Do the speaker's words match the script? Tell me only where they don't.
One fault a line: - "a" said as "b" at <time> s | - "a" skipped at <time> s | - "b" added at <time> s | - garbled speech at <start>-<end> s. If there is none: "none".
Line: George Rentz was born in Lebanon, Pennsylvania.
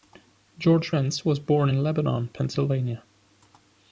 none